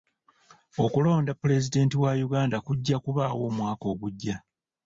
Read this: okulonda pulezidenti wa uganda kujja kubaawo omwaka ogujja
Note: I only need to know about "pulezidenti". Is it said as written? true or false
true